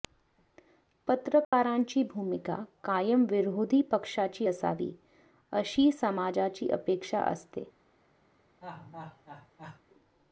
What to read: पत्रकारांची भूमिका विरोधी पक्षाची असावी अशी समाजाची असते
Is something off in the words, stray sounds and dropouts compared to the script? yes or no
yes